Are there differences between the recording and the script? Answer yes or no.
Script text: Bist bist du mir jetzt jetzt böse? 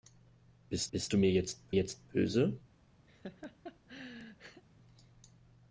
no